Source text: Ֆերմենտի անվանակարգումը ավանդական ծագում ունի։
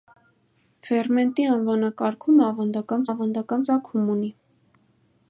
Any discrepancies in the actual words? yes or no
yes